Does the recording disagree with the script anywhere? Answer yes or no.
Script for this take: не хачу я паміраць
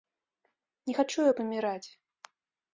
no